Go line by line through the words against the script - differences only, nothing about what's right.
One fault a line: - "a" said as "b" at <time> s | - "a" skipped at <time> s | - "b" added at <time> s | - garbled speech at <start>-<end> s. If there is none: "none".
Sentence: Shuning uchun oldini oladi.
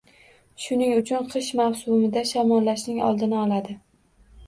- "qish mavsumida shamollashning" added at 1.3 s